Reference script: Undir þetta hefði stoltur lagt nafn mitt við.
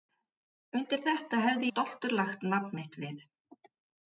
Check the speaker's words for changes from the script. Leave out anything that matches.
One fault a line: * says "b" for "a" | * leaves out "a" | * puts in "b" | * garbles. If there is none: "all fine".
all fine